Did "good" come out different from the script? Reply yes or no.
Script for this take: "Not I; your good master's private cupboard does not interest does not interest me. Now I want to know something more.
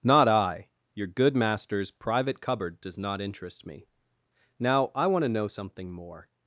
no